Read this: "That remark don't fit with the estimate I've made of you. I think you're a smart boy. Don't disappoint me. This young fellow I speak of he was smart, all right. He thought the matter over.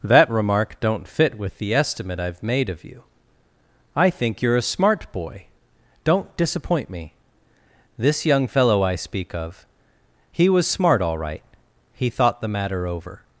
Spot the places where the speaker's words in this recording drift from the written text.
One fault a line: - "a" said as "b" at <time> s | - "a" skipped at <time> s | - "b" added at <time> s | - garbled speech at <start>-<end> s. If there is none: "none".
none